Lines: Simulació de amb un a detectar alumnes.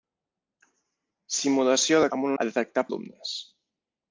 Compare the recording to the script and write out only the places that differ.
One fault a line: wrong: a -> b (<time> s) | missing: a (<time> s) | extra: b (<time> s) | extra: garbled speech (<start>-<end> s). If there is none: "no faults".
no faults